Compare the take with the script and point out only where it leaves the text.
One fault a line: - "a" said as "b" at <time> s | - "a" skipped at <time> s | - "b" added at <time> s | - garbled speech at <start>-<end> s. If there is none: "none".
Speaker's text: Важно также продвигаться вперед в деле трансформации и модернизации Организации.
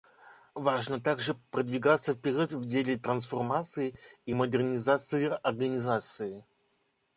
none